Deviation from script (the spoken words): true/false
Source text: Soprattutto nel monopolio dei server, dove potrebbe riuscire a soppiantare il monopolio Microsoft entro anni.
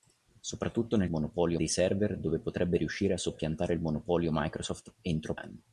false